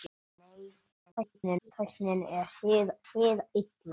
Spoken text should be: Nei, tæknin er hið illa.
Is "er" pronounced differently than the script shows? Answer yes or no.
no